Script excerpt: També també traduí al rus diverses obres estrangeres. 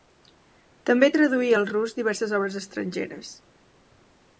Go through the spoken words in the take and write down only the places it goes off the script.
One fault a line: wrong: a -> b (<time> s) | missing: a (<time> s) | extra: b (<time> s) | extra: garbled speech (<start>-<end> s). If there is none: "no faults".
missing: també (1.1 s)